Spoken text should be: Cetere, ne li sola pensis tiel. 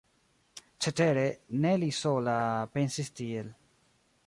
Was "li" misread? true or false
false